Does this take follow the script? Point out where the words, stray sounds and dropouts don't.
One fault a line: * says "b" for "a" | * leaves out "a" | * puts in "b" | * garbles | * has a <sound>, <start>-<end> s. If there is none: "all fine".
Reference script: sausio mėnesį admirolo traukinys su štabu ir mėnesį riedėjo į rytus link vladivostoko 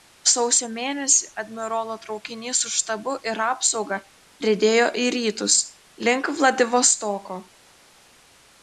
* says "apsauga" for "mėnesį"